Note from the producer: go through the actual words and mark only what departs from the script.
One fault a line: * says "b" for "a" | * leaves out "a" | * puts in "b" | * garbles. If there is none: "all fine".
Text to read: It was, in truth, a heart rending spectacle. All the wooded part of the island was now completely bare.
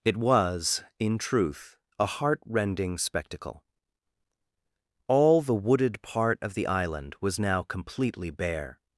all fine